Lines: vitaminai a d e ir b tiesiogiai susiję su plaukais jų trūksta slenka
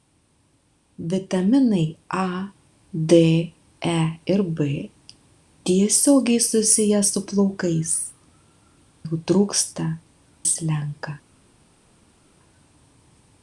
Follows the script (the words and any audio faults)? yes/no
yes